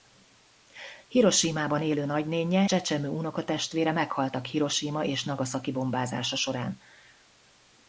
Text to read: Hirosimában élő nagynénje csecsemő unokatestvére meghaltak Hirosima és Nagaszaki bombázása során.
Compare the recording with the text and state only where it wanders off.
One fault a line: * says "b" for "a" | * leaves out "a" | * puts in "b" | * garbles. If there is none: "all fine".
all fine